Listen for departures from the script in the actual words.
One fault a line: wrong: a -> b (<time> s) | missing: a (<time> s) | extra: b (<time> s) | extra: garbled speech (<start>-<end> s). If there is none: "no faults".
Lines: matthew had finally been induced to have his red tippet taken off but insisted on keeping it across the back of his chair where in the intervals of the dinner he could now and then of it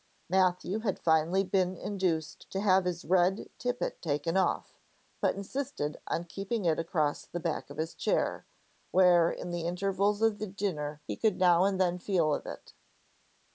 extra: feel (12.0 s)